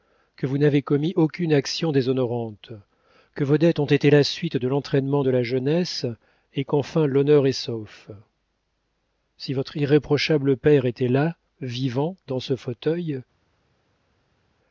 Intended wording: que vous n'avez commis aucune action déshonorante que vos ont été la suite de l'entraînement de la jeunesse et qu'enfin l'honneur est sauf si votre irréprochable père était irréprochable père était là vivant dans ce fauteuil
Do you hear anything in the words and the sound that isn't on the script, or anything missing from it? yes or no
yes